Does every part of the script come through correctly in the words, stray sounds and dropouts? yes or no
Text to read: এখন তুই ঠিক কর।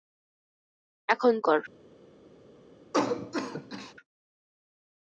no